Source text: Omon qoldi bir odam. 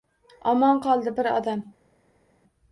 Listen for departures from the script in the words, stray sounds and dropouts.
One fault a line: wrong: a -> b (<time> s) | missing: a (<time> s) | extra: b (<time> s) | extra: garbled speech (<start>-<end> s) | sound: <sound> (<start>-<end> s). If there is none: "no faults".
no faults